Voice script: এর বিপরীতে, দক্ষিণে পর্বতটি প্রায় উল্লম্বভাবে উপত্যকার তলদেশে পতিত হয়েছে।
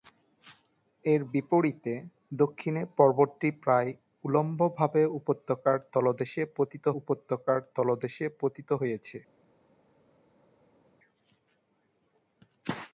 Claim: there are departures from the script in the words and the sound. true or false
true